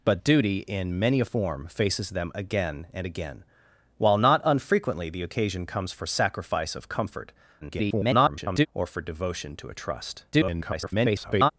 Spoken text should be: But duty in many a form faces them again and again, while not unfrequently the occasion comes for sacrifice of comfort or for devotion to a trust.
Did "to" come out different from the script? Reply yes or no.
no